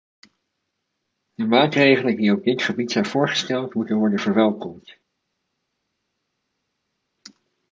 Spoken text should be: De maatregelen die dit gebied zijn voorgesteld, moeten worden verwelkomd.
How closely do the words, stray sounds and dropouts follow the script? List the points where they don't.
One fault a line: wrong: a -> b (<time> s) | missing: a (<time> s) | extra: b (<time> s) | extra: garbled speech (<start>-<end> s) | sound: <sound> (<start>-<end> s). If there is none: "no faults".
extra: op (2.3 s)